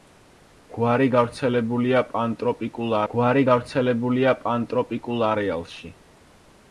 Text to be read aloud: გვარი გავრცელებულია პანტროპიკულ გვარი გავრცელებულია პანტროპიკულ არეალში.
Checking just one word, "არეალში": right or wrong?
right